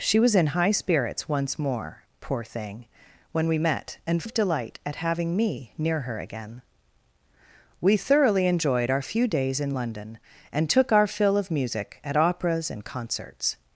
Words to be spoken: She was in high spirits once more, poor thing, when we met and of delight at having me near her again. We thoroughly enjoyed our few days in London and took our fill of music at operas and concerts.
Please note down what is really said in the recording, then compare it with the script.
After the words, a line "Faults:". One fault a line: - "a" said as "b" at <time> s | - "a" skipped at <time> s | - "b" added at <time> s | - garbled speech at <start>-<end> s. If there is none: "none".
She was in high spirits once more, poor thing, when we met and of delight at having me near her again. We thoroughly enjoyed our few days in London and took our fill of music at operas and concerts.
Faults:
none